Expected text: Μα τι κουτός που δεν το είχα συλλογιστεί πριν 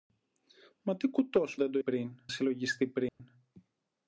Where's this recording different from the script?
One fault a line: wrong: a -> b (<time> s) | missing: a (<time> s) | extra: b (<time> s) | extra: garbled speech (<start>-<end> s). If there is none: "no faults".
missing: που (1.6 s)
wrong: είχα -> πριν (1.8 s)